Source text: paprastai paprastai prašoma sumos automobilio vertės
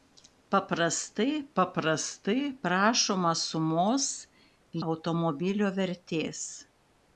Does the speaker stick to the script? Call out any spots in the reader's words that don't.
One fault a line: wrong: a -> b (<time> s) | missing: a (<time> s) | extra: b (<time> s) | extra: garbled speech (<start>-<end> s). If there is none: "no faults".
no faults